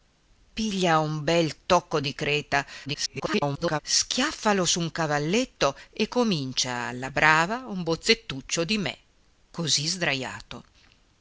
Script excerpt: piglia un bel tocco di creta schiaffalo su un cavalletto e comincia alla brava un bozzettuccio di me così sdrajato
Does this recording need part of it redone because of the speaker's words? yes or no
yes